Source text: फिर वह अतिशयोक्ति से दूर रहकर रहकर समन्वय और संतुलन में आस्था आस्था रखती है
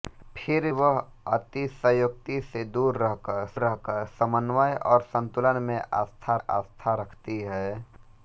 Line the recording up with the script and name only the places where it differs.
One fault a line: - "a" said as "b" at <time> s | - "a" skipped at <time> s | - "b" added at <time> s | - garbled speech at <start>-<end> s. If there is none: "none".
none